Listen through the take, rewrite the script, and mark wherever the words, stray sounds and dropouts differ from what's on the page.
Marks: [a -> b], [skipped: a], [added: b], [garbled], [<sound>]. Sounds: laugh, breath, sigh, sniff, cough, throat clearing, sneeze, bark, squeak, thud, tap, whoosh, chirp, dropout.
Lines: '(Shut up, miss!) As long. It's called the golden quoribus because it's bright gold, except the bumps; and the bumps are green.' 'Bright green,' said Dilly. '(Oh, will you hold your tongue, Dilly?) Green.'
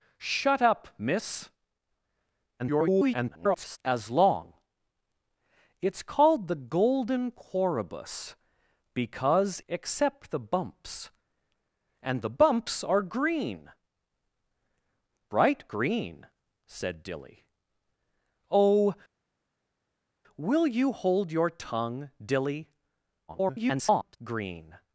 '(Shut up, miss!) [garbled] As long. It's called the golden quoribus because [skipped: it's bright gold,] except the bumps; and the bumps are green.' 'Bright green,' said Dilly. '(Oh, will you hold your tongue, Dilly?) [garbled] Green.'